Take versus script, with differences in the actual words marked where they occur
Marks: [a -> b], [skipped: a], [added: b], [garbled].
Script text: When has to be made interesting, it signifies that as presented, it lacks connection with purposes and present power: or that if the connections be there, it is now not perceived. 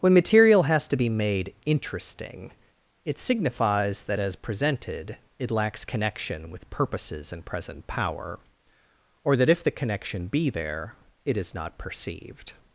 When [added: material] has to be made interesting, it signifies that as presented, it lacks connection with purposes and present power: or that if the [connections -> connection] be there, it is [skipped: now] not perceived.